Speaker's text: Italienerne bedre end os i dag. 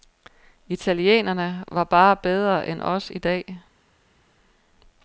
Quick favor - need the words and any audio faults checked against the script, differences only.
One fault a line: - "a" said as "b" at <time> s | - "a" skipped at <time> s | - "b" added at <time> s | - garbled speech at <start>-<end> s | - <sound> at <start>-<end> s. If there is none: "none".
- "var bare" added at 1.7 s